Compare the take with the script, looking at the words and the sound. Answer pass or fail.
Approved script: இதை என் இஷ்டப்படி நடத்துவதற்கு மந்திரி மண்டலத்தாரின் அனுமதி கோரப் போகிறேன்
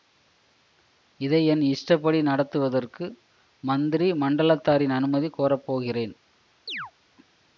fail